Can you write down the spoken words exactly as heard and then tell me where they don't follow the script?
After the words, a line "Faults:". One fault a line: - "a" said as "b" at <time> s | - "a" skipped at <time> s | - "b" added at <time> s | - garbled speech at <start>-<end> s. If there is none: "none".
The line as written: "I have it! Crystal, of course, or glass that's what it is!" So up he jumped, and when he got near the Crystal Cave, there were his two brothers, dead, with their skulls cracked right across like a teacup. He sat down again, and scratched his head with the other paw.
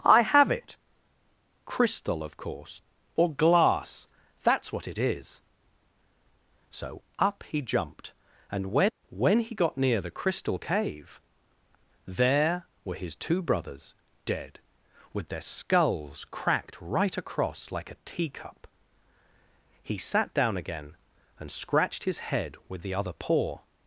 "I have it! Crystal, of course, or glass that's what it is!" So up he jumped, and when when he got near the Crystal Cave, there were his two brothers, dead, with their skulls cracked right across like a teacup. He sat down again, and scratched his head with the other paw.
Faults:
- "when" added at 9.1 s